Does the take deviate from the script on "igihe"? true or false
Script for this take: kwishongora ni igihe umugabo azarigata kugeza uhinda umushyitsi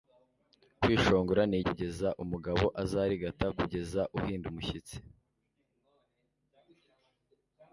true